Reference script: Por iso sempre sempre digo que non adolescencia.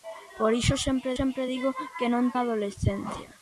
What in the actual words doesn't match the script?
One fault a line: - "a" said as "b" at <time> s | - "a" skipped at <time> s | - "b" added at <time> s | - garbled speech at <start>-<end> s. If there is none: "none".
none